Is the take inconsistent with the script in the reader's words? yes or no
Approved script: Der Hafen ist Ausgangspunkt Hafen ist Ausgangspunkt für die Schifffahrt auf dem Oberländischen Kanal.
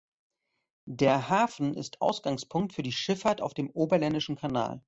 yes